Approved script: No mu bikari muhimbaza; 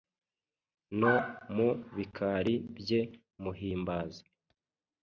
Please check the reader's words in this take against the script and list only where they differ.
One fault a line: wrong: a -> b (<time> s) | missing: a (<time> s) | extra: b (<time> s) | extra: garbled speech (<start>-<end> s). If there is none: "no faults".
extra: bye (2.8 s)